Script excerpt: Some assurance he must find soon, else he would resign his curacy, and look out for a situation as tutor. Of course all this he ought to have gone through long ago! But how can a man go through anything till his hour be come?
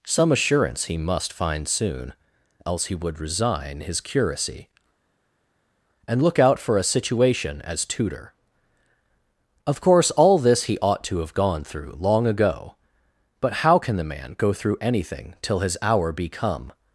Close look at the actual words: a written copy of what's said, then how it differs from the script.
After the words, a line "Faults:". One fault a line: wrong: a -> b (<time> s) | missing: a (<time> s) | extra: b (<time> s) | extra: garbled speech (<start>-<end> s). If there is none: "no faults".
Some assurance he must find soon, else he would resign his curacy, and look out for a situation as tutor. Of course all this he ought to have gone through long ago! But how can the man go through anything till his hour be come?
Faults:
wrong: a -> the (14.0 s)